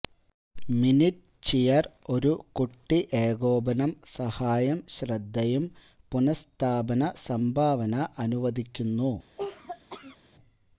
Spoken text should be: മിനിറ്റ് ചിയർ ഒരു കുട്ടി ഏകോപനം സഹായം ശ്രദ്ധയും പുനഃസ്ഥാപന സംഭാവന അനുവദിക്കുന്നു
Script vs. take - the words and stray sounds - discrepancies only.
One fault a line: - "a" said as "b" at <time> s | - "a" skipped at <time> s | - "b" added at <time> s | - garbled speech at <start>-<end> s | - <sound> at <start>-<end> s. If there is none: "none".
- cough at 9.4-10.2 s